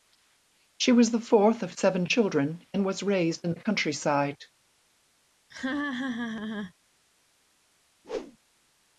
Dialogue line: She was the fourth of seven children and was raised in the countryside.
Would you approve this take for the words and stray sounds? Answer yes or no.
no